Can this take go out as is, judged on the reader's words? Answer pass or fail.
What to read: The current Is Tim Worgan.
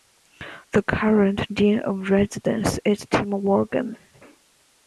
fail